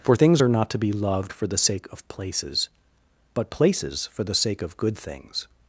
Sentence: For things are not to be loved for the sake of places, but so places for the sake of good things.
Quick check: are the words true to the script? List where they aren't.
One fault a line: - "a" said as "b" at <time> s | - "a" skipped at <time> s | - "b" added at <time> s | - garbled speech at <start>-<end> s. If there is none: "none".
- "so" skipped at 3.5 s